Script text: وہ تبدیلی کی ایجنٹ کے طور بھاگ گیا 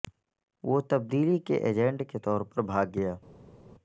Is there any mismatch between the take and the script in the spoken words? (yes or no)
yes